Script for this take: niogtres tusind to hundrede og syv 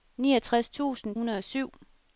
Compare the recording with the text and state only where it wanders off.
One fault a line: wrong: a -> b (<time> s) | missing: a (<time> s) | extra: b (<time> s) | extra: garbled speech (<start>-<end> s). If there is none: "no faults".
missing: to (1.1 s)